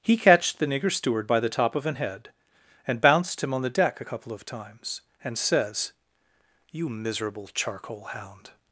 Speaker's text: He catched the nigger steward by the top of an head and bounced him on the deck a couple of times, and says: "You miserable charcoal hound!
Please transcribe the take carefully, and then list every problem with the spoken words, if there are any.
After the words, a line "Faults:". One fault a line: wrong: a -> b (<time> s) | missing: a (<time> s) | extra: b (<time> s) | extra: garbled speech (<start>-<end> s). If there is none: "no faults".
He catched the nigger steward by the top of an head and bounced him on the deck a couple of times, and says: "You miserable charcoal hound!
Faults:
no faults